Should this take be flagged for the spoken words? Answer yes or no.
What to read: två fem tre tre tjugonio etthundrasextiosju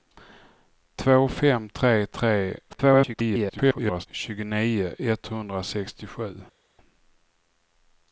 yes